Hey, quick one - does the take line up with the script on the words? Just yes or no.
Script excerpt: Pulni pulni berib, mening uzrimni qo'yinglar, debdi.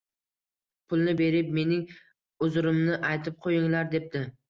no